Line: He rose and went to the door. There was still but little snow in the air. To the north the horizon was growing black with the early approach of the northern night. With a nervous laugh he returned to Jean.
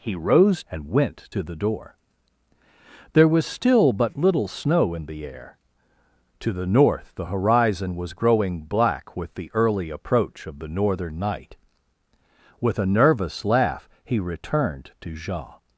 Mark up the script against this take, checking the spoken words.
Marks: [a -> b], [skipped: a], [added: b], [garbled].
He rose and went to the door. There was still but little snow in the air. To the north the horizon was growing black with the early approach of the northern night. With a nervous laugh he returned to Jean.